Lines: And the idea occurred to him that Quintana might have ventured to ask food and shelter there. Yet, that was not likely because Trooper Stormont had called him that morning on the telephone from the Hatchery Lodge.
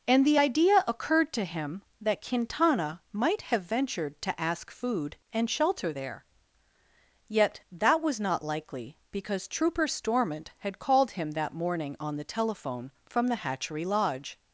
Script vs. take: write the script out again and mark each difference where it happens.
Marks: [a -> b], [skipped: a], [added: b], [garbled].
And the idea occurred to him that Quintana might have ventured to ask food and shelter there. Yet, that was not likely because Trooper Stormont had called him that morning on the telephone from the Hatchery Lodge.